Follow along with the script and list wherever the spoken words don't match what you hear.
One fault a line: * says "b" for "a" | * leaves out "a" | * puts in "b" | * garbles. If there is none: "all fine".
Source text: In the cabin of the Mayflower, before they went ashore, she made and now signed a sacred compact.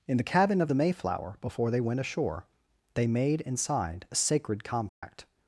* says "they" for "she"
* leaves out "now"